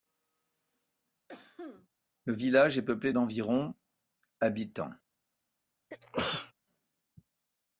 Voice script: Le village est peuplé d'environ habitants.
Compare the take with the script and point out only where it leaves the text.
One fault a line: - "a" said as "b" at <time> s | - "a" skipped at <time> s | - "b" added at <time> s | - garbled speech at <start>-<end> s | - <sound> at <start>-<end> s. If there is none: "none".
- cough at 1.3-1.9 s
- sneeze at 5.9-6.5 s